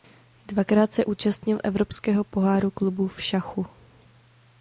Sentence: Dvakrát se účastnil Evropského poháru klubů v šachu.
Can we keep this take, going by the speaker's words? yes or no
yes